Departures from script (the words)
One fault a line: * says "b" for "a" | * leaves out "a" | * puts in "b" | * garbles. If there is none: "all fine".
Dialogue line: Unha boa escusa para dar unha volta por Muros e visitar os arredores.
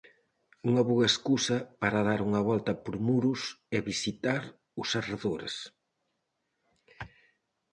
all fine